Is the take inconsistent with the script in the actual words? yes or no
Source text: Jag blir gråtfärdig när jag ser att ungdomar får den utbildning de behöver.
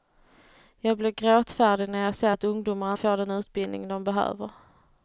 no